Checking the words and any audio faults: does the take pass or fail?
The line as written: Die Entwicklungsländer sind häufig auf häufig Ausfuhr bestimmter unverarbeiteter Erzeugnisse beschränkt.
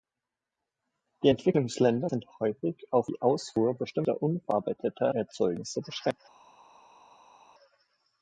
fail